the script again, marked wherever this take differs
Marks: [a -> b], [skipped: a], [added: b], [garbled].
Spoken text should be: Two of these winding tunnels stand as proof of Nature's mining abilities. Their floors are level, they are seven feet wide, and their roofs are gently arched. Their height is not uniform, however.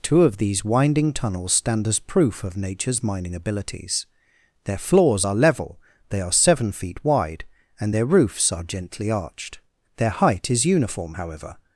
Two of these winding tunnels stand as proof of Nature's mining abilities. Their floors are level, they are seven feet wide, and their roofs are gently arched. Their height is [skipped: not] uniform, however.